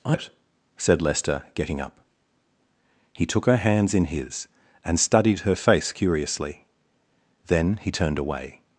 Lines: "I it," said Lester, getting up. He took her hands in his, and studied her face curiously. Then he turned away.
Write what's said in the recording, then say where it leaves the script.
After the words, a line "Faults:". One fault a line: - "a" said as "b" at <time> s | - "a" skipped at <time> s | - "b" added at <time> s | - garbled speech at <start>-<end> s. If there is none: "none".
"I it," said Lester, getting up. He took her hands in his, and studied her face curiously. Then he turned away.
Faults:
none